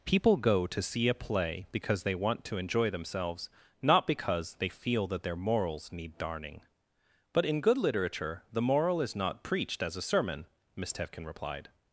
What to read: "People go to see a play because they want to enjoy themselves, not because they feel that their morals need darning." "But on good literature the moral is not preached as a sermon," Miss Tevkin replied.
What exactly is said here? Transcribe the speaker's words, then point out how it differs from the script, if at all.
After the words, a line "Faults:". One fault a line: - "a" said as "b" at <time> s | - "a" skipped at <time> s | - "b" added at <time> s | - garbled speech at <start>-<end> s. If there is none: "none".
"People go to see a play because they want to enjoy themselves, not because they feel that their morals need darning." "But in good literature the moral is not preached as a sermon," Miss Tevkin replied.
Faults:
- "on" said as "in" at 7.4 s